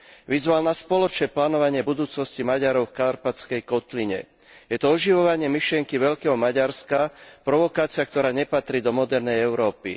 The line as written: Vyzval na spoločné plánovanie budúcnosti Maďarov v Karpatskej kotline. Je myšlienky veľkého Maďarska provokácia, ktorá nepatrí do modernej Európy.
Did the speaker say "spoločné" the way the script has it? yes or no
yes